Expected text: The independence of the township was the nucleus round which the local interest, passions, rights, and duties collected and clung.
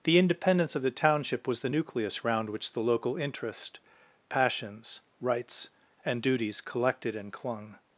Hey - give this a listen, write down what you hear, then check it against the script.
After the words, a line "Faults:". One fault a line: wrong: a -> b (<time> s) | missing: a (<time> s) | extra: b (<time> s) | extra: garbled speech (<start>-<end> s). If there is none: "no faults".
The independence of the township was the nucleus round which the local interest, passions, rights, and duties collected and clung.
Faults:
no faults